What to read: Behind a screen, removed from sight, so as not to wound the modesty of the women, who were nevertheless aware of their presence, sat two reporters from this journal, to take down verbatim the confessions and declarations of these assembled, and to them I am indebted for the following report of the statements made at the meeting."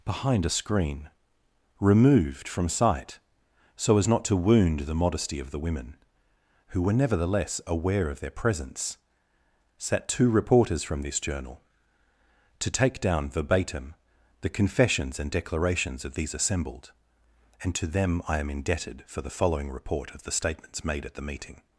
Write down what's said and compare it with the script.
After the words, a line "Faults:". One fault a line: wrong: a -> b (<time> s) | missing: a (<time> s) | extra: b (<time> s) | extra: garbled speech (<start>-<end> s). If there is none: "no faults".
Behind a screen, removed from sight, so as not to wound the modesty of the women, who were nevertheless aware of their presence, sat two reporters from this journal, to take down verbatim the confessions and declarations of these assembled, and to them I am indebted for the following report of the statements made at the meeting."
Faults:
no faults